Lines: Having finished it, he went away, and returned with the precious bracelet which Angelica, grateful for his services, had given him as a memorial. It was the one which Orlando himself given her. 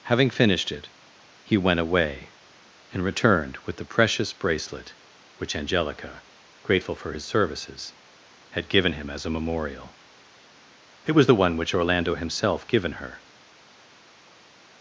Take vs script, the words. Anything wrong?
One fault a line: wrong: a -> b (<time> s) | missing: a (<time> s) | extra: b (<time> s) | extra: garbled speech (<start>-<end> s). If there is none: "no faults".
no faults